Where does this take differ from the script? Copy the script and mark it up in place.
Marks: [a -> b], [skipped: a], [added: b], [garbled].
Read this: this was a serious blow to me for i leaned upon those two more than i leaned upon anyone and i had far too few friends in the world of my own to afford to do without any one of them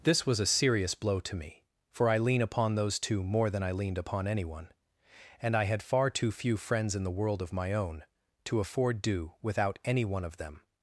this was a serious blow to me for i [leaned -> lean] upon those two more than i leaned upon anyone and i had far too few friends in the world of my own to afford [skipped: to] do without any one of them